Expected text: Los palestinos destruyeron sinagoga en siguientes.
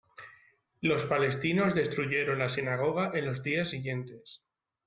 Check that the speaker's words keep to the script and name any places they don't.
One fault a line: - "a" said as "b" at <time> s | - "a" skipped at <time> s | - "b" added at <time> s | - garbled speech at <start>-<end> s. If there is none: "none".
- "la" added at 2.4 s
- "los días" added at 3.3 s